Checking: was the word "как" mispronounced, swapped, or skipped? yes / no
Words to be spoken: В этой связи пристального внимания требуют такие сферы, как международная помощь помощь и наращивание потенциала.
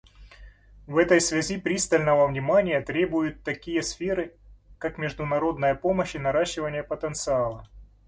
no